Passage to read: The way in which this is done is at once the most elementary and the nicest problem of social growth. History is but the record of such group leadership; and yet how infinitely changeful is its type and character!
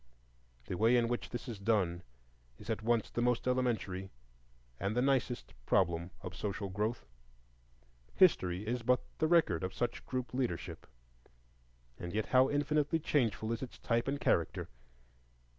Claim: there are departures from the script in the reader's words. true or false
false